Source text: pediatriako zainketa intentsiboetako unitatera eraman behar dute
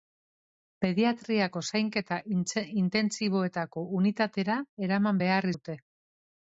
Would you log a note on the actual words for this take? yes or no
no